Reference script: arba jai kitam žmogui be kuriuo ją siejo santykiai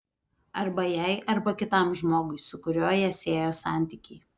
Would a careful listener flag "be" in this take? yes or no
yes